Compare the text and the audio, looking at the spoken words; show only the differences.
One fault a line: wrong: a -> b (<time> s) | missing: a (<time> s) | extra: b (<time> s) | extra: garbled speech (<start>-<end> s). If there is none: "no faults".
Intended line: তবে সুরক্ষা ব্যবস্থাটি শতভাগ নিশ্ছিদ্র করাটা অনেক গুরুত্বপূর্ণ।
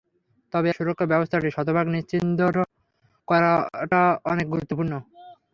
no faults